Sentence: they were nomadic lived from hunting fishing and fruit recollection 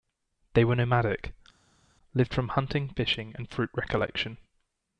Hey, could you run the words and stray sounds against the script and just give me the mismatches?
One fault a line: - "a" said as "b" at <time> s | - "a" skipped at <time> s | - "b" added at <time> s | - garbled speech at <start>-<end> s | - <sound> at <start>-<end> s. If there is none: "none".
none